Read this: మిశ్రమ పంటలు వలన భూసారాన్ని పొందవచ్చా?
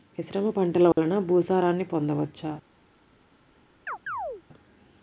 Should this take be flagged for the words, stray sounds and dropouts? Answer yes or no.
yes